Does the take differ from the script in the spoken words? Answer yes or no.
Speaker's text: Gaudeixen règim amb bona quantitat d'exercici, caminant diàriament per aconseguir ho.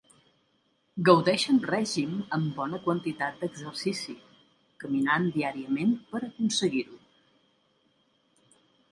no